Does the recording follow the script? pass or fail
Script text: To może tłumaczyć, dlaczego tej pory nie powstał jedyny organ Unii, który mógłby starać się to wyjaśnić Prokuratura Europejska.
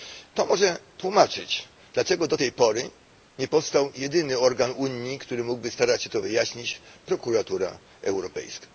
fail